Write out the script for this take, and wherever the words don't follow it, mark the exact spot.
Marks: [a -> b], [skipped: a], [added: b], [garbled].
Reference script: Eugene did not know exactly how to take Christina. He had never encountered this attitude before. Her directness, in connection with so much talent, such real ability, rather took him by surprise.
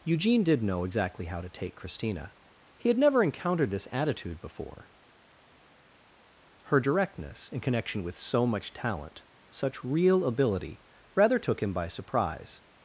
Eugene did [skipped: not] know exactly how to take Christina. He had never encountered this attitude before. Her directness, in connection with so much talent, such real ability, rather took him by surprise.